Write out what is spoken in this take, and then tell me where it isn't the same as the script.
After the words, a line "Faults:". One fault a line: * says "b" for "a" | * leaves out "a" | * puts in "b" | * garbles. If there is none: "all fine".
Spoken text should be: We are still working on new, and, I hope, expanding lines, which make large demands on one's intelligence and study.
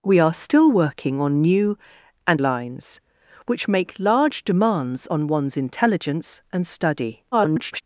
We are still working on new, and, lines, which make large demands on one's intelligence and study. [garbled]
Faults:
* leaves out "I hope expanding"
* garbles